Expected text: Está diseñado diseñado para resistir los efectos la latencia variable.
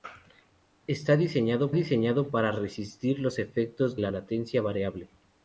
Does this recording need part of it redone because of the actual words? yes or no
no